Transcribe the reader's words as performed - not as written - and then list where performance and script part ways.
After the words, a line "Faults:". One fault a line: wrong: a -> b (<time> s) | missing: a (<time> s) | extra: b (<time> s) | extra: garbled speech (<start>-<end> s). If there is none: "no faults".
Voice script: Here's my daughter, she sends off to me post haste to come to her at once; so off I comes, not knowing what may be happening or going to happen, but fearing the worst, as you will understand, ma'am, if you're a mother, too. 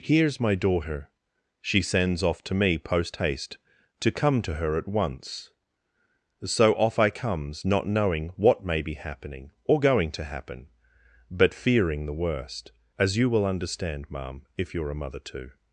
Here's my daughter, she sends off to me post haste to come to her at once; so off I comes, not knowing what may be happening or going to happen, but fearing the worst, as you will understand, ma'am, if you're a mother, too.
Faults:
no faults